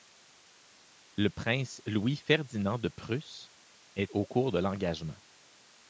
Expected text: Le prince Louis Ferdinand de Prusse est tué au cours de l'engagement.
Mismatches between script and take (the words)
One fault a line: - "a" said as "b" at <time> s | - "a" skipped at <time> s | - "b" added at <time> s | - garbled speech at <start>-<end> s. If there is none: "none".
- "tué" skipped at 4.1 s